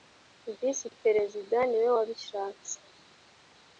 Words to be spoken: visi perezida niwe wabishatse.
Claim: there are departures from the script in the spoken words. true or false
false